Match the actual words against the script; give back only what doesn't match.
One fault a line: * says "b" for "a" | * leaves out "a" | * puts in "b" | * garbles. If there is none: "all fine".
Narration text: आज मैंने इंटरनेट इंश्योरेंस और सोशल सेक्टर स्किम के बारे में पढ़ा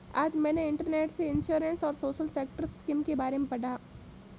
* puts in "से"